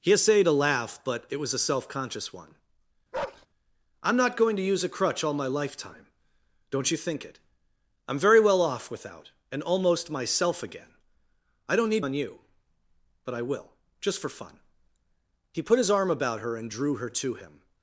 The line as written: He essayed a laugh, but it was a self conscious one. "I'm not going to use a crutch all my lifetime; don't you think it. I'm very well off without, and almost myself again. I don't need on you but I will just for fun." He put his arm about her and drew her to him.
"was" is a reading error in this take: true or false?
false